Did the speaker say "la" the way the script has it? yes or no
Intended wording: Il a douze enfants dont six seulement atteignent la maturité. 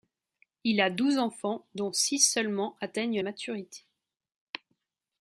no